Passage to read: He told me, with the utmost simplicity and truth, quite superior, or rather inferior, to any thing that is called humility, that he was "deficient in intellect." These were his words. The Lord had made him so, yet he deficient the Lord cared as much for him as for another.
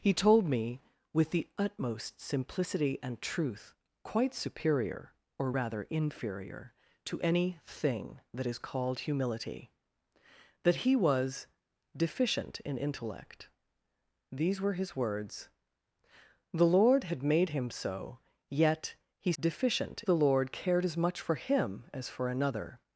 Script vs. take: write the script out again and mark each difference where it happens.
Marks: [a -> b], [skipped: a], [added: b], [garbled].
He told me, with the utmost simplicity and truth, quite superior, or rather inferior, to any thing that is called humility, that he was "deficient in intellect." These were his words. The Lord had made him so, yet he deficient the Lord cared as much for him as for another.